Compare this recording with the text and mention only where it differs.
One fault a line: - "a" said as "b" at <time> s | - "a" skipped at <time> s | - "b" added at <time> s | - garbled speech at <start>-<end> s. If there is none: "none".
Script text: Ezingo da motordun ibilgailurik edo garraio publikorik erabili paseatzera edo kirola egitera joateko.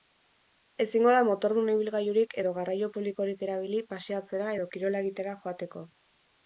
none